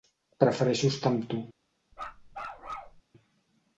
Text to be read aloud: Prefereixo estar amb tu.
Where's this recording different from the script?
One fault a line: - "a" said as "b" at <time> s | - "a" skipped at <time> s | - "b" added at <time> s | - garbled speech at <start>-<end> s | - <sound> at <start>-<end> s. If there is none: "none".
- bark at 1.9-3.0 s